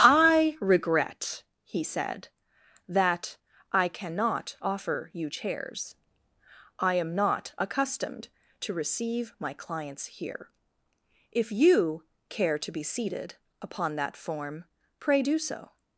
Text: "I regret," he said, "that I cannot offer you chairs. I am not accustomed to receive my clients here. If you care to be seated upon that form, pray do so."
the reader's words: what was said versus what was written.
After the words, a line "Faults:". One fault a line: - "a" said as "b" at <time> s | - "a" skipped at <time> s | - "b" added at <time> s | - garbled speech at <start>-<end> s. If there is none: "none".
"I regret," he said, "that I cannot offer you chairs. I am not accustomed to receive my clients here. If you care to be seated upon that form, pray do so."
Faults:
none